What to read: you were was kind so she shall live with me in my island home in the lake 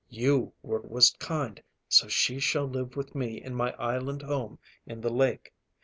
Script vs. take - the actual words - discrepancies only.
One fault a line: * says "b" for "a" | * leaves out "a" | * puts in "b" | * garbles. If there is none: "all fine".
all fine